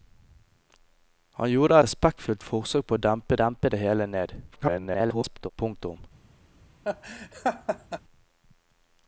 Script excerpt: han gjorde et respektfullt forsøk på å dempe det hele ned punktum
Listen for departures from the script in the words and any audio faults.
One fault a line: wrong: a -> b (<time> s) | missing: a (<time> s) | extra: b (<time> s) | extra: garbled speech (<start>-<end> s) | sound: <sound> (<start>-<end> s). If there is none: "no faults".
missing: et (1.8 s)
extra: dempe (3.4 s)
extra: garbled speech (4.5-5.5 s)
sound: laugh (6.8-8.0 s)